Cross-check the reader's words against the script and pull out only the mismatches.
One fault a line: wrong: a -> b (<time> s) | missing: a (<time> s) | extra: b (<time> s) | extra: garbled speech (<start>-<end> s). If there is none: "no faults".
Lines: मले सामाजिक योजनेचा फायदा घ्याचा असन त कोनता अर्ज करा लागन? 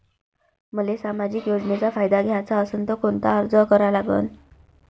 no faults